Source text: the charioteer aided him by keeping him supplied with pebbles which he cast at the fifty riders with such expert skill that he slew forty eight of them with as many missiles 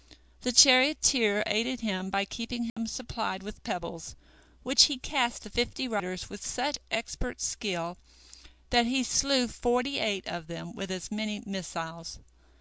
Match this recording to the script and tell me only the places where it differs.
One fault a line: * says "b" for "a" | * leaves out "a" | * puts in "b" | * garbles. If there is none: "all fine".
* leaves out "at"